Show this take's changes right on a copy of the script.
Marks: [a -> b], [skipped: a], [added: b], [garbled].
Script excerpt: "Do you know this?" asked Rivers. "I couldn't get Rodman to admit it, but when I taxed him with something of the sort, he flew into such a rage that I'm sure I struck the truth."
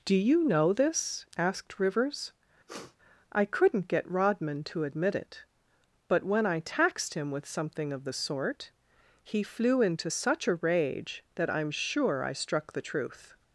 "Do you know this?" asked Rivers. "I couldn't get Rodman to admit it, but when I taxed him with something of the sort, he flew into such a rage that I'm sure I struck the truth."